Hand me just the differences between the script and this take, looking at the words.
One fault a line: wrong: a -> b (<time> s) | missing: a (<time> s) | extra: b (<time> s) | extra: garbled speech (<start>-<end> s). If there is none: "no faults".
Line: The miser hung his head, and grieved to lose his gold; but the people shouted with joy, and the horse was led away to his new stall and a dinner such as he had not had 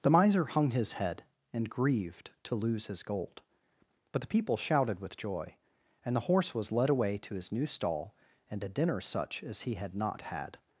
no faults